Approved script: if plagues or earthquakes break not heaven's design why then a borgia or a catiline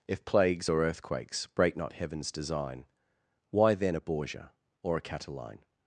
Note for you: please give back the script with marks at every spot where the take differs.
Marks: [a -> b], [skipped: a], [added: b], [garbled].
if plagues or earthquakes break not heaven's design why then a borgia or a catiline